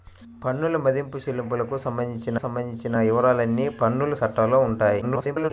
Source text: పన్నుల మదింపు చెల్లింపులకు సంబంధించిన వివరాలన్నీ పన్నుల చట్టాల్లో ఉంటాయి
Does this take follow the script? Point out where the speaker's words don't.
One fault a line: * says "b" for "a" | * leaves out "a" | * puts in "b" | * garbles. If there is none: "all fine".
* puts in "సంబంధించిన"
* garbles